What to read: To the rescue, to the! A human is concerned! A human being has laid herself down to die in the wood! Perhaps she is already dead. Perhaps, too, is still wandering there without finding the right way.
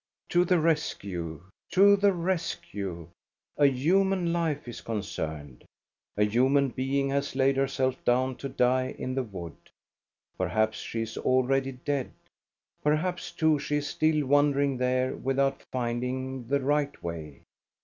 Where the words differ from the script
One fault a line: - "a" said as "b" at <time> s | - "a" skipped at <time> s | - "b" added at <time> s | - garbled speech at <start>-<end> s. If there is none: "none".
- "rescue" added at 2.1 s
- "life" added at 4.3 s
- "she" added at 13.6 s